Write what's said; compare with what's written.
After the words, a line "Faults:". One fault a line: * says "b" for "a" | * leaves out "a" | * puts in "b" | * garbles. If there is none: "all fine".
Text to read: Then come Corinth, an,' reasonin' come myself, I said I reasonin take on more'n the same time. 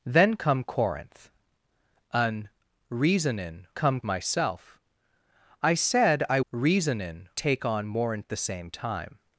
Then come Corinth, an,' reasonin' come myself, I said I reasonin take on more'n the same time.
Faults:
all fine